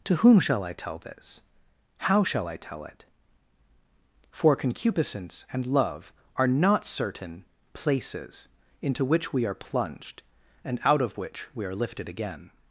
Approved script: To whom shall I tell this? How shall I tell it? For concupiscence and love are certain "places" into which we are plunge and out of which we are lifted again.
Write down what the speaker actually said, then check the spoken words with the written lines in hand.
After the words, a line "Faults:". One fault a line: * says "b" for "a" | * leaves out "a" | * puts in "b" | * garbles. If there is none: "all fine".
To whom shall I tell this? How shall I tell it? For concupiscence and love are not certain "places" into which we are plunged and out of which we are lifted again.
Faults:
* puts in "not"
* says "plunged" for "plunge"